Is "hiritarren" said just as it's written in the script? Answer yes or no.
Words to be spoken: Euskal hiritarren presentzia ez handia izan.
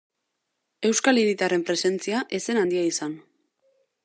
yes